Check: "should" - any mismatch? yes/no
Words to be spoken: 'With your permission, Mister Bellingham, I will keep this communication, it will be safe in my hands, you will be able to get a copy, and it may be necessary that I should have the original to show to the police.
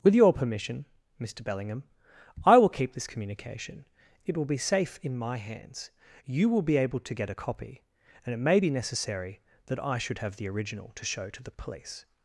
no